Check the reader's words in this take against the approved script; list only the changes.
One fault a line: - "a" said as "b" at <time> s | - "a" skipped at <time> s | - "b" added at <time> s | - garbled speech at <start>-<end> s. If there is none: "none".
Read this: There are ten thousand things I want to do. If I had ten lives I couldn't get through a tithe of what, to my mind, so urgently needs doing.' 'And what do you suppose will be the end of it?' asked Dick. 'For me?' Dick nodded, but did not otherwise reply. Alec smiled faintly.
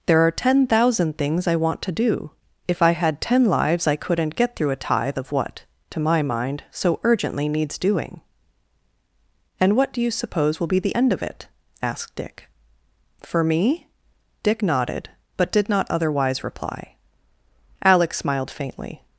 none